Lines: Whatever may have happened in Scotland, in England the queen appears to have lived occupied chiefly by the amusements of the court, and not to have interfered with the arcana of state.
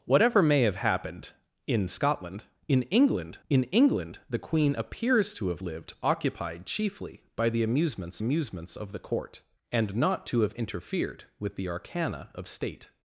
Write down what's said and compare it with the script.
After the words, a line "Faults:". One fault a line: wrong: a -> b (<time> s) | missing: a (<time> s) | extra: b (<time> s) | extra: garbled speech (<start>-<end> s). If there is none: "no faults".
Whatever may have happened in Scotland, in England in England the queen appears to have lived occupied chiefly by the amusements amusements of the court, and not to have interfered with the arcana of state.
Faults:
extra: in England (3.5 s)
extra: amusements (8.2 s)